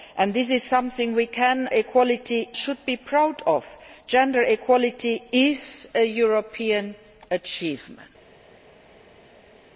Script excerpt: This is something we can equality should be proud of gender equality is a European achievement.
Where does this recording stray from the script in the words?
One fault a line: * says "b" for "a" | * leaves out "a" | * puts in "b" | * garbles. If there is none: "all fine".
all fine